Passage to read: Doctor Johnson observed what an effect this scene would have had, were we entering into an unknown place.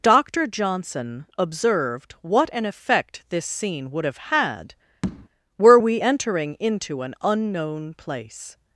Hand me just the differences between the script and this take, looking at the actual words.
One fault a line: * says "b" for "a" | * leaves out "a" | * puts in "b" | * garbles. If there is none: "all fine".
all fine